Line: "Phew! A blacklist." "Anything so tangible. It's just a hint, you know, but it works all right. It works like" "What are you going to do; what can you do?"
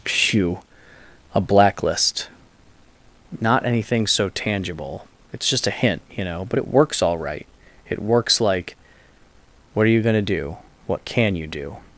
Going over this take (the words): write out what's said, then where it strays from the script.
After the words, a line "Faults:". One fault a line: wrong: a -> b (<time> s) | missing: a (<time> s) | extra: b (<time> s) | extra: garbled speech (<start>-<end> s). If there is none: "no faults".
"Phew! A blacklist." "Not anything so tangible. It's just a hint, you know, but it works all right. It works like" "What are you going to do; what can you do?"
Faults:
extra: Not (3.4 s)